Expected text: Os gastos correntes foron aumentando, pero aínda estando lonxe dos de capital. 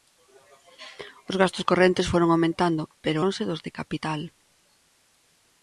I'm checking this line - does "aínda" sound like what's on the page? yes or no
no